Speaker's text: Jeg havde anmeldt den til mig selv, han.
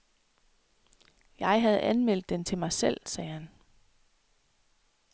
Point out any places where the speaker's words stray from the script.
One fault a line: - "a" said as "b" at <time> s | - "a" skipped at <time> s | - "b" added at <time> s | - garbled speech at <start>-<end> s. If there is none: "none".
- "sagde" added at 3.0 s